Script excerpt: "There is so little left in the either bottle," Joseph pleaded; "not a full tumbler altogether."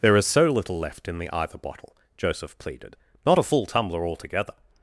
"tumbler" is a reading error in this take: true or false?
false